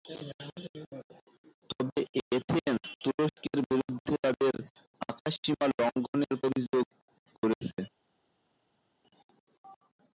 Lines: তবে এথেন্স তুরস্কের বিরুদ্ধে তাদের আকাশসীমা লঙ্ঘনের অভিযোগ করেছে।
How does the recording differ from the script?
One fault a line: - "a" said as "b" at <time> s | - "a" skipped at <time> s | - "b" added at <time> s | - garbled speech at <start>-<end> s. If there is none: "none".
none